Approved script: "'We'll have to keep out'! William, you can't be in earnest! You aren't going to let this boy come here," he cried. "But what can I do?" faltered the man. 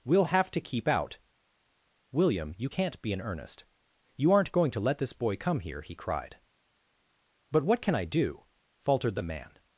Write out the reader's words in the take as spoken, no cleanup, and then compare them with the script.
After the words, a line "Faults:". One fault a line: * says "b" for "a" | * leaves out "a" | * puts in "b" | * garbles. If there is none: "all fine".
"'We'll have to keep out'! William, you can't be in earnest! You aren't going to let this boy come here," he cried. "But what can I do?" faltered the man.
Faults:
all fine